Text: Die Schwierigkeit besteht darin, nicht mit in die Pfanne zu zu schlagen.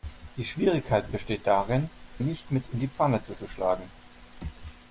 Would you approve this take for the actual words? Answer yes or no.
yes